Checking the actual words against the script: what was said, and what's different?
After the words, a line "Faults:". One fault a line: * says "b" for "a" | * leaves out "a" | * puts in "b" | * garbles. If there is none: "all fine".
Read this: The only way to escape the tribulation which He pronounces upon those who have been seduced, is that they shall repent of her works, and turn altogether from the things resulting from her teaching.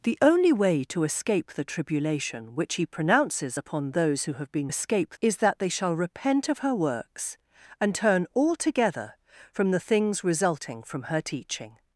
The only way to escape the tribulation which He pronounces upon those who have been escape, is that they shall repent of her works, and turn altogether from the things resulting from her teaching.
Faults:
* says "escape" for "seduced"